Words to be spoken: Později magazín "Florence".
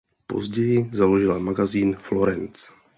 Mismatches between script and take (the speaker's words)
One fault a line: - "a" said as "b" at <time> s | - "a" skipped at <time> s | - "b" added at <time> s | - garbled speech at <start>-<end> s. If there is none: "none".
- "založila" added at 0.9 s